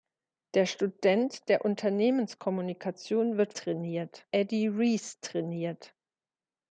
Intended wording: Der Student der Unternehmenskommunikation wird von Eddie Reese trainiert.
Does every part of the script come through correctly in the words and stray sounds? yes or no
no